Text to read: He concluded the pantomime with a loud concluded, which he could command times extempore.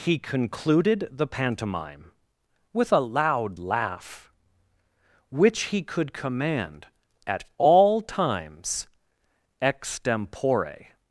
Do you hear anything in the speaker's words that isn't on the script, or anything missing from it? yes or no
yes